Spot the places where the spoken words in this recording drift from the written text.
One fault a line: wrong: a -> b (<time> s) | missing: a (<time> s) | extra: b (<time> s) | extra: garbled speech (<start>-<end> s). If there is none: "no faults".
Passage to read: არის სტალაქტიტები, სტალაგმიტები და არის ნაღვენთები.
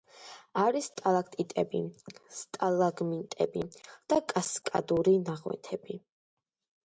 wrong: არის -> კასკადური (4.3 s)